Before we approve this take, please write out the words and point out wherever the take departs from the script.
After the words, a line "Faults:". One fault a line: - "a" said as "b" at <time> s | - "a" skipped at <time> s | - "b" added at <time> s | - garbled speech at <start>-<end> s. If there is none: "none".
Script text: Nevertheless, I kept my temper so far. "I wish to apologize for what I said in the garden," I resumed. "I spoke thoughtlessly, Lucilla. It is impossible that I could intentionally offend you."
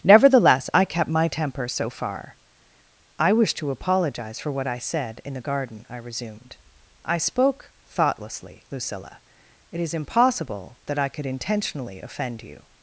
Nevertheless, I kept my temper so far. "I wish to apologize for what I said in the garden," I resumed. "I spoke thoughtlessly, Lucilla. It is impossible that I could intentionally offend you."
Faults:
none